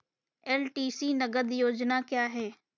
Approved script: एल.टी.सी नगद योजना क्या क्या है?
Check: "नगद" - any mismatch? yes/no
no